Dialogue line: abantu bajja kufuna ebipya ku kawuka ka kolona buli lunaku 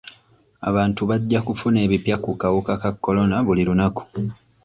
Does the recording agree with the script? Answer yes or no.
yes